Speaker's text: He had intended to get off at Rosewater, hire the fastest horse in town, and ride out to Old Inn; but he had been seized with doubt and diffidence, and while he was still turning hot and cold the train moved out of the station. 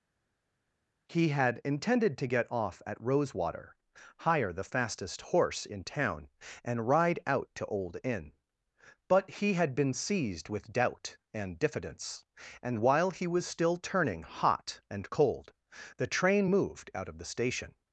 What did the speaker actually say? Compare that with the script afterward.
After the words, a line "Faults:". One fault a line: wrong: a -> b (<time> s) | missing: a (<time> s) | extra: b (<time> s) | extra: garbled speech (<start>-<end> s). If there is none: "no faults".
He had intended to get off at Rosewater, hire the fastest horse in town, and ride out to Old Inn; but he had been seized with doubt and diffidence, and while he was still turning hot and cold the train moved out of the station.
Faults:
no faults